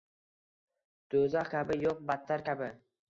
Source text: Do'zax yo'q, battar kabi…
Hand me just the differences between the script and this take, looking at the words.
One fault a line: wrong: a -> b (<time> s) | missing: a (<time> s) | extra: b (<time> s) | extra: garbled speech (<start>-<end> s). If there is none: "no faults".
extra: kabi (1.5 s)